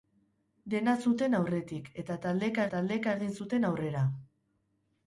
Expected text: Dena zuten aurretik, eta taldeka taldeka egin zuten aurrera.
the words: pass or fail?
pass